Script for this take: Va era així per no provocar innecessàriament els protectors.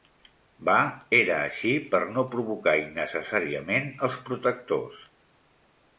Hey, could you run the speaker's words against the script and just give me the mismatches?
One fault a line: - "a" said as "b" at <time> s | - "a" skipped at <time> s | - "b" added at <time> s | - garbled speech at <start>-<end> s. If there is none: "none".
none